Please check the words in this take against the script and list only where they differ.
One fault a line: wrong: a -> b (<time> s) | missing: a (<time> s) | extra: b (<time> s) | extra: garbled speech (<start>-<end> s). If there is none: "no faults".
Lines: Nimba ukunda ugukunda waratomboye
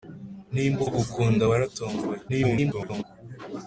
missing: ukunda (0.8 s)
extra: garbled speech (2.3-3.0 s)